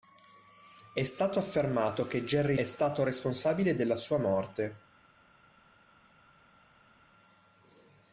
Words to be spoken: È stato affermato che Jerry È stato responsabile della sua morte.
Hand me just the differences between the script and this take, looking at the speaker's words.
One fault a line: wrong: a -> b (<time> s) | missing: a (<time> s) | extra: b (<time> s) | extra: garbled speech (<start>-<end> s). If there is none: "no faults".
no faults